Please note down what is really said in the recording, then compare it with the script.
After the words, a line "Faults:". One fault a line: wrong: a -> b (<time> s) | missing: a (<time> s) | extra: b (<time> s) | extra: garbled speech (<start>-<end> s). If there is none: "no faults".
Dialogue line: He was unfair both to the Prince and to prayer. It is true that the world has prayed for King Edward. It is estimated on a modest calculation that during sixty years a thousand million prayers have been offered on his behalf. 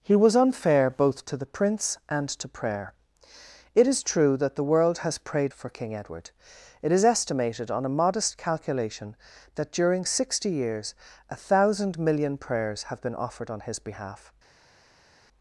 He was unfair both to the Prince and to prayer. It is true that the world has prayed for King Edward. It is estimated on a modest calculation that during sixty years a thousand million prayers have been offered on his behalf.
Faults:
no faults